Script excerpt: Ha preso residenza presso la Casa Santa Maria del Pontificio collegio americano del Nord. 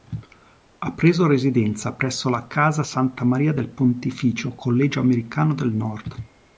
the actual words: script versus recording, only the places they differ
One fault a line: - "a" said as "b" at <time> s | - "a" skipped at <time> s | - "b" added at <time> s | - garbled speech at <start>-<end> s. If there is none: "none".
none